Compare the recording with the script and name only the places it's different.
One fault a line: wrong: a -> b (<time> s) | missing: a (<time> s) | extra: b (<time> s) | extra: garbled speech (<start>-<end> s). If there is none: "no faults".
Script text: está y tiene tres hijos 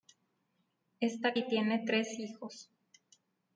no faults